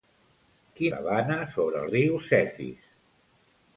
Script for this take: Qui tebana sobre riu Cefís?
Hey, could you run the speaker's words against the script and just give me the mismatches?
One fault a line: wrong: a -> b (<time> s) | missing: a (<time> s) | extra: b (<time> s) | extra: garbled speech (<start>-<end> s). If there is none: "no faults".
no faults